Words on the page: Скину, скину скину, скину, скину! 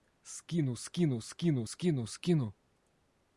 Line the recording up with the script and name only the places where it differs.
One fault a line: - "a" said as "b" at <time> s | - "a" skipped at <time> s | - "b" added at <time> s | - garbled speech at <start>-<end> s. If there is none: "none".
none